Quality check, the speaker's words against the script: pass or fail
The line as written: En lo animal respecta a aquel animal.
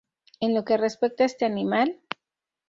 fail